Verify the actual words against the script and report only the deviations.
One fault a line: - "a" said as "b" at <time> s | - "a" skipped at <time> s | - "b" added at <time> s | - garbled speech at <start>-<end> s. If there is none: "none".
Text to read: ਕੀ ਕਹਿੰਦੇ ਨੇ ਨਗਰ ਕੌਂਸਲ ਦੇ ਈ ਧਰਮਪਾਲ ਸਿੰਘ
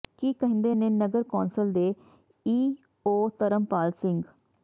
- "ਓ" added at 3.1 s